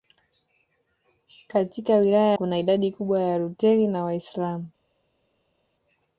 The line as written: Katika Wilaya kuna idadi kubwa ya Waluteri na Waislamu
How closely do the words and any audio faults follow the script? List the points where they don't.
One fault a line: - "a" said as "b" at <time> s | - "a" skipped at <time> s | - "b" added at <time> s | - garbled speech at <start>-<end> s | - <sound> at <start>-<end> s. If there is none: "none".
none